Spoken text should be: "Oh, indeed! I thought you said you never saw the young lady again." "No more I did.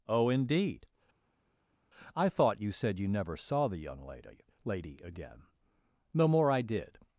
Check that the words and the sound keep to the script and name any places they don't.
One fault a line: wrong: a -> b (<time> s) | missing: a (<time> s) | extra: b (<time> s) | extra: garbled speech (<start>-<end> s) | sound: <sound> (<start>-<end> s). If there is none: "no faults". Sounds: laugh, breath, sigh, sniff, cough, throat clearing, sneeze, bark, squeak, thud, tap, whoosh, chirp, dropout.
extra: lady (4.6 s)